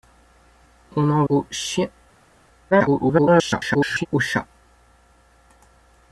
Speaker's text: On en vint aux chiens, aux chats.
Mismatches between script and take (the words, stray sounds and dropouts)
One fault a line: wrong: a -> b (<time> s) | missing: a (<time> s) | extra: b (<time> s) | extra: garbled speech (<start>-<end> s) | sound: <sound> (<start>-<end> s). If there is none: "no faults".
missing: vint (1.2 s)
extra: garbled speech (2.7-4.1 s)